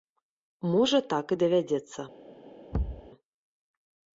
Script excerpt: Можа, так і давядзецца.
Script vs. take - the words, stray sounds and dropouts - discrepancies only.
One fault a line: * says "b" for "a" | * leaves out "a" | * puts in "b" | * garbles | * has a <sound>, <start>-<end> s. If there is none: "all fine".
* has a thud, 2.7-3.1 s